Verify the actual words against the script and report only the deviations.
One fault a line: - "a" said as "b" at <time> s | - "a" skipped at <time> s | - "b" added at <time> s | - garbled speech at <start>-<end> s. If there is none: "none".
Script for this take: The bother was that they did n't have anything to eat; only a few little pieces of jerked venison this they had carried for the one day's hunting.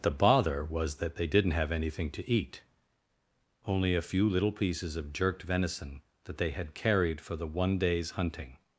- "this" said as "that" at 6.2 s